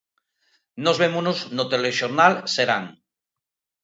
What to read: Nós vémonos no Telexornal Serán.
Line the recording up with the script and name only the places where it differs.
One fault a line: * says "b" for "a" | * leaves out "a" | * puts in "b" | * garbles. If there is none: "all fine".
all fine